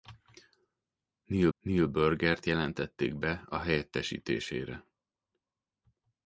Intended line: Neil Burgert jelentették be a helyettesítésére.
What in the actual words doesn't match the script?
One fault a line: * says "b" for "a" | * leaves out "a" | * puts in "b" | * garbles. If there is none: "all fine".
* puts in "neil"